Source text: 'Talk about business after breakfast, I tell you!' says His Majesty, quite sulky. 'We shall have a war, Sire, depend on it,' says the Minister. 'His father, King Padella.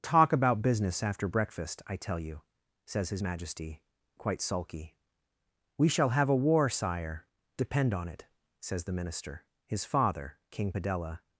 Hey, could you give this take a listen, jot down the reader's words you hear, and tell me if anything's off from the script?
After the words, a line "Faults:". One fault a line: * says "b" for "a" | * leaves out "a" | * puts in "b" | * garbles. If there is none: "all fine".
'Talk about business after breakfast, I tell you!' says His Majesty, quite sulky. 'We shall have a war, Sire, depend on it,' says the Minister. 'His father, King Padella.
Faults:
all fine